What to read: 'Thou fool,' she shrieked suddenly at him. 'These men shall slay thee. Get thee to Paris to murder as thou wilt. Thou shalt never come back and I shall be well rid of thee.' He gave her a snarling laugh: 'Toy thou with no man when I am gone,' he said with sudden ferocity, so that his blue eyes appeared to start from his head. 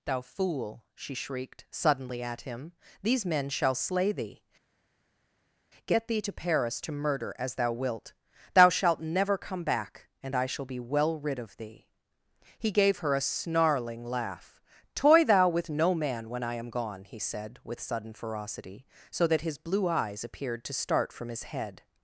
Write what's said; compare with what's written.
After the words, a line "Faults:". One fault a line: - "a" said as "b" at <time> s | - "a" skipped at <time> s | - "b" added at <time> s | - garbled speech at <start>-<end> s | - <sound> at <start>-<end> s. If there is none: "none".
'Thou fool,' she shrieked suddenly at him. 'These men shall slay thee. Get thee to Paris to murder as thou wilt. Thou shalt never come back and I shall be well rid of thee.' He gave her a snarling laugh: 'Toy thou with no man when I am gone,' he said with sudden ferocity, so that his blue eyes appeared to start from his head.
Faults:
none